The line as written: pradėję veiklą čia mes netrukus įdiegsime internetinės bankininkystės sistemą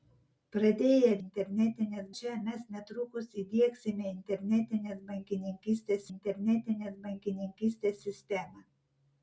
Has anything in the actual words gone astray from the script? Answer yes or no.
yes